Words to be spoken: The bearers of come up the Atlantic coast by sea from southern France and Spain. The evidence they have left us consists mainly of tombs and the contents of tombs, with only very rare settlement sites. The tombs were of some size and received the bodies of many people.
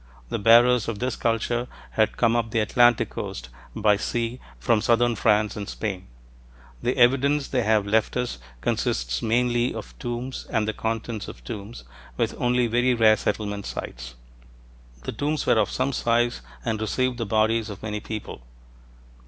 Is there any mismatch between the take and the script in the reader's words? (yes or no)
yes